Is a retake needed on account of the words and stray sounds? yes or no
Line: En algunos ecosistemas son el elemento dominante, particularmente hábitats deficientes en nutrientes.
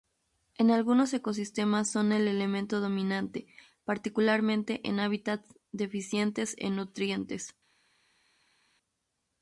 yes